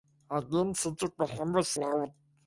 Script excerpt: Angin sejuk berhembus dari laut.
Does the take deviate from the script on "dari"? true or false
true